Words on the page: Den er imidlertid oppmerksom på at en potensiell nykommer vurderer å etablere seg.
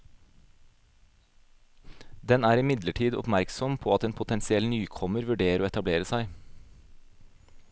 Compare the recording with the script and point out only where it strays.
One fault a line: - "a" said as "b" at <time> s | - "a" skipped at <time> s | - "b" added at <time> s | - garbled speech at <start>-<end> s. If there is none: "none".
none